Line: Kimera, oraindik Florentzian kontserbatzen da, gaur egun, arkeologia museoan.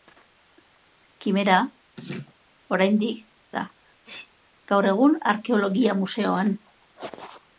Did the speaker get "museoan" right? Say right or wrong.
right